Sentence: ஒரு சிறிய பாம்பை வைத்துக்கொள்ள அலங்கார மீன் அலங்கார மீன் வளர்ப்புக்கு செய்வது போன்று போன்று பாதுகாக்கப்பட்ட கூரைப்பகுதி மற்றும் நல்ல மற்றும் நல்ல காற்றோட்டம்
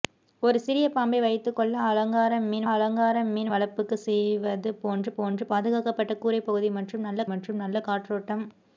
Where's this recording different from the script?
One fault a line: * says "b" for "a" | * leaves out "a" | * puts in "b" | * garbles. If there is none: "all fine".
all fine